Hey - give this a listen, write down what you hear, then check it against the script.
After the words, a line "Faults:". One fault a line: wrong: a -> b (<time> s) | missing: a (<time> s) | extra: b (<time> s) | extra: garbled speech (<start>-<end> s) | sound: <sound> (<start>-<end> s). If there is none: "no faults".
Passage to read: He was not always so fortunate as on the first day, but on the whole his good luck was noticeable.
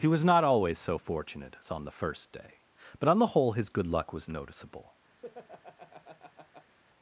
He was not always so fortunate as on the first day, but on the whole his good luck was noticeable.
Faults:
sound: laugh (5.2-6.8 s)